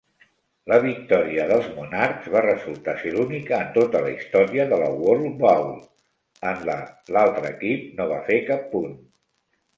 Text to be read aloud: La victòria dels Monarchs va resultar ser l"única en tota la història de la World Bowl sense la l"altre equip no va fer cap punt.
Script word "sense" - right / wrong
wrong